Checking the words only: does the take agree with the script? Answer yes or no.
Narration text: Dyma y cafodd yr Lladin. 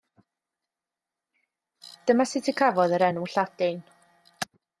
no